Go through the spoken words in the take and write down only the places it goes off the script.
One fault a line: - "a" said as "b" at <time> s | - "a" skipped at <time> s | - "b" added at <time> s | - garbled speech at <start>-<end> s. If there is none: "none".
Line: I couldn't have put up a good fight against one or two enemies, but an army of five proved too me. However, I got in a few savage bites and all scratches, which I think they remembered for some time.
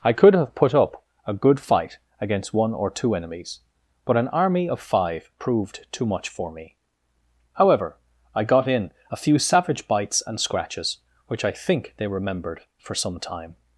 - "couldn't" said as "could" at 0.1 s
- "much for" added at 6.1 s
- "all" skipped at 10.4 s